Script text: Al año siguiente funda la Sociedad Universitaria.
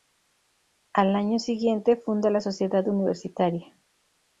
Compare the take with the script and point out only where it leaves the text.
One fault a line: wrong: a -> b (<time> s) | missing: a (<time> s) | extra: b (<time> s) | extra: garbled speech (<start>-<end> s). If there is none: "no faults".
no faults